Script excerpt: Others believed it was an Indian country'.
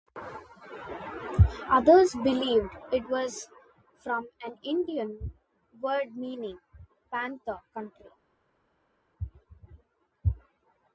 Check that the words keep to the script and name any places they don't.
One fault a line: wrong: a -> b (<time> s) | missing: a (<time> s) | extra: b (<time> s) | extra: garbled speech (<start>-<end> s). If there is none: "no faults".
extra: from (4.0 s)
extra: word meaning panther (5.8 s)